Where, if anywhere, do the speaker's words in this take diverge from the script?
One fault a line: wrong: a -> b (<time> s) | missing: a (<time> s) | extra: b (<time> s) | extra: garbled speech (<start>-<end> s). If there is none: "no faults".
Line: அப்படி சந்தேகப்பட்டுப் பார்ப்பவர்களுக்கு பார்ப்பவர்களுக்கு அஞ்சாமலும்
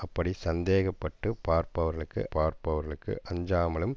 no faults